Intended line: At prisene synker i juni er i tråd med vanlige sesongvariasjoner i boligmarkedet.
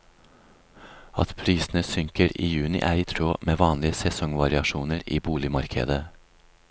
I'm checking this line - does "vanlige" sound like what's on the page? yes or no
yes